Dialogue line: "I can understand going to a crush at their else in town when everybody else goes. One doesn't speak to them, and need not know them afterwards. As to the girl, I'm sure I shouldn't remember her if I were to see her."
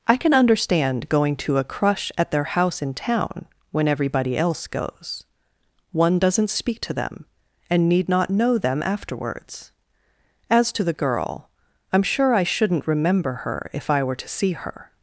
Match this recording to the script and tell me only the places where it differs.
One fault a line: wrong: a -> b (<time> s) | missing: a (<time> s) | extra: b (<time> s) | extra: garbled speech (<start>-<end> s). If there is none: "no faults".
wrong: else -> house (2.4 s)